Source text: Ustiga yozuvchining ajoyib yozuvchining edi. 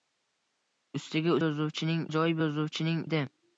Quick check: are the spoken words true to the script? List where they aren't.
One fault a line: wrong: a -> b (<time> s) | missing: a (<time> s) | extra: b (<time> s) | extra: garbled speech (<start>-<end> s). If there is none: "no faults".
no faults